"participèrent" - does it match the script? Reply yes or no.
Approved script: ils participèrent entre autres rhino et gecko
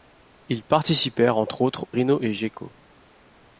yes